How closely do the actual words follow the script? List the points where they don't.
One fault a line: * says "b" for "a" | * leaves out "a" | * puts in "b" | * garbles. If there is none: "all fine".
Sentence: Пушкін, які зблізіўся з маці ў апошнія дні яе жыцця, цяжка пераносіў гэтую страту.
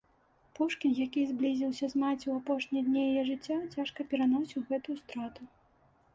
all fine